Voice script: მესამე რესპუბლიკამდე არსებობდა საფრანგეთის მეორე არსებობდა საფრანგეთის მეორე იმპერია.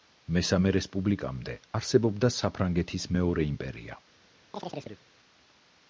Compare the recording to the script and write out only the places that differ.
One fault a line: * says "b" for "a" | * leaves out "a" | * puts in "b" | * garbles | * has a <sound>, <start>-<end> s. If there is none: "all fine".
* leaves out "არსებობდა საფრანგეთის მეორე"
* has a chirp, 4.5-5.0 s